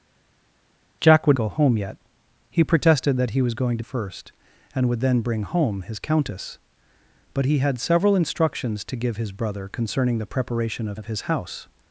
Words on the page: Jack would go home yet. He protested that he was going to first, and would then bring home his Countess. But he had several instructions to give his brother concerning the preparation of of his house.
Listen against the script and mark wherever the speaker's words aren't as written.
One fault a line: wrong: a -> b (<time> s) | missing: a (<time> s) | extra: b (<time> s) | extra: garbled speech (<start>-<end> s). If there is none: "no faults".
no faults